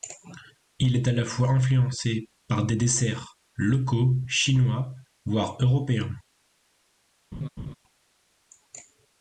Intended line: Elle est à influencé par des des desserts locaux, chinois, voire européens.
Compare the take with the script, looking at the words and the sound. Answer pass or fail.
fail